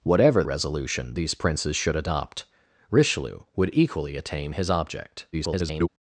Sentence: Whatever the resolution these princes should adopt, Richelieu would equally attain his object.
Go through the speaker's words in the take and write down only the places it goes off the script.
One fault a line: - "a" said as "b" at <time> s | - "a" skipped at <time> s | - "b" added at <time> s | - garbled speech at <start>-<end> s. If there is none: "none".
- "the" skipped at 0.4 s
- garbled speech at 5.3-5.9 s